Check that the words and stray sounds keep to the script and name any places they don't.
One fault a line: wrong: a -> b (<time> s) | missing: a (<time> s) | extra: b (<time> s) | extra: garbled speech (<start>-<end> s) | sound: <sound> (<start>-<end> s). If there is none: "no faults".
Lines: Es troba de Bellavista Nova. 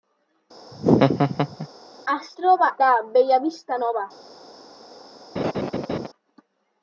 sound: laugh (0.7-1.7 s)
sound: laugh (5.4-6.1 s)